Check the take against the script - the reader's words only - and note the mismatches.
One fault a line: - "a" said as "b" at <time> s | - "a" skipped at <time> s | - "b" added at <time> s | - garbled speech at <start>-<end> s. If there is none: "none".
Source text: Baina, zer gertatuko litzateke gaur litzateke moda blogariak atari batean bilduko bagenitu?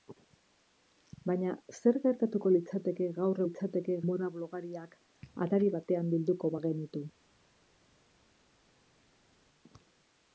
none